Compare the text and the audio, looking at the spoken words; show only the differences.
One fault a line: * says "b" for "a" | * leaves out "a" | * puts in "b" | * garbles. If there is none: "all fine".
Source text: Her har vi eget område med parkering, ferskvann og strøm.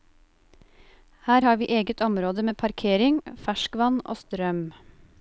all fine